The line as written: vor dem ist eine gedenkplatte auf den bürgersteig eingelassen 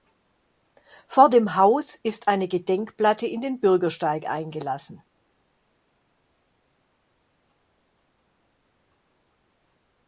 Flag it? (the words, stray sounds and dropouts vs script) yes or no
yes